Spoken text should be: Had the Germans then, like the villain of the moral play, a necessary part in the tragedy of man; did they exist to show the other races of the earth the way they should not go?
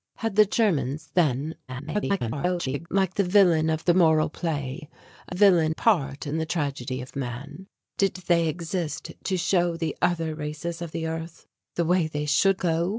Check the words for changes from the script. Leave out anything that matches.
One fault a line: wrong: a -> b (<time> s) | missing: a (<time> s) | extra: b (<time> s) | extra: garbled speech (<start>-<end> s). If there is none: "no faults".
extra: garbled speech (1.7-2.9 s)
wrong: necessary -> villain (5.3 s)
missing: not (12.6 s)